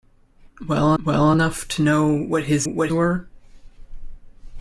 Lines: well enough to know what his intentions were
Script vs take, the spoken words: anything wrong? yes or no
yes